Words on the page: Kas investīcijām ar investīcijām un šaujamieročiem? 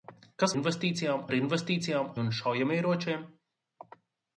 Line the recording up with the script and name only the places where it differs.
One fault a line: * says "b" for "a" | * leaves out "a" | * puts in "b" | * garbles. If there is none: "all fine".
all fine